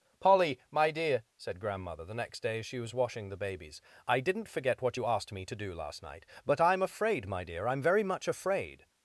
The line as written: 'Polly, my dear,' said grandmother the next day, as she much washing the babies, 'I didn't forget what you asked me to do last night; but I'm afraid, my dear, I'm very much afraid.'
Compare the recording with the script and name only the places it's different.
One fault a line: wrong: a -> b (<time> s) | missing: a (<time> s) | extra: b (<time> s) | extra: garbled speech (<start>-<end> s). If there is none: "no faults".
wrong: much -> was (2.8 s)